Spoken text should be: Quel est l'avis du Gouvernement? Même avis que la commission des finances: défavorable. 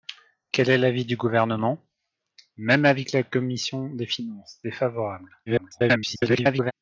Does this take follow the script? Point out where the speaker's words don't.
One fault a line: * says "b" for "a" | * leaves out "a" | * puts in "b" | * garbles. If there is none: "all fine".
* garbles